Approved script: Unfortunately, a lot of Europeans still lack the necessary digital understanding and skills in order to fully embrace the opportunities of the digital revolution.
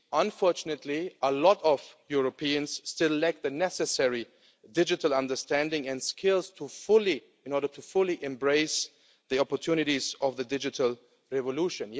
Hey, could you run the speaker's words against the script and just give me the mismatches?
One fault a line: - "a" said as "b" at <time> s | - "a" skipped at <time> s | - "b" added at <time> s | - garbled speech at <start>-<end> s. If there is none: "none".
none